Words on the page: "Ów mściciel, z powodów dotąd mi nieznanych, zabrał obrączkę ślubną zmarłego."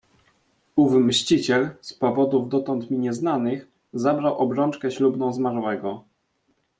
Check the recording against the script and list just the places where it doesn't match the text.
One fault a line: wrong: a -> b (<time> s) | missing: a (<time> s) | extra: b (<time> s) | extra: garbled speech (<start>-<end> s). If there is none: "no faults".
no faults